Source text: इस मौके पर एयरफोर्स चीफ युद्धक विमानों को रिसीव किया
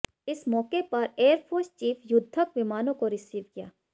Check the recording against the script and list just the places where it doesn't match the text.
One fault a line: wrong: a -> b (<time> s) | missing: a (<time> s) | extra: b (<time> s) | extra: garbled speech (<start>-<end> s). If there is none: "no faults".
no faults